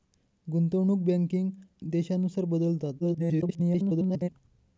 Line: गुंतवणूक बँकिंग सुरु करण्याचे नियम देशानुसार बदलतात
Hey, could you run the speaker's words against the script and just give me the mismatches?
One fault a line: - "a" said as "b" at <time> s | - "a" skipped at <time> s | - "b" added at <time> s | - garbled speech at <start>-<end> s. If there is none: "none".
- "सुरु करण्याचे नियम" skipped at 1.5 s
- garbled speech at 3.0-4.3 s